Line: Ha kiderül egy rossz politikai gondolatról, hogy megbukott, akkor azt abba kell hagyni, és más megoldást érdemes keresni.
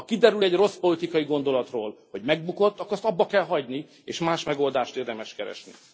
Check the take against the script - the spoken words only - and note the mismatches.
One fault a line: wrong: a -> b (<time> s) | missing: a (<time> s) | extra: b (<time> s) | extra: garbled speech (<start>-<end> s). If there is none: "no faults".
no faults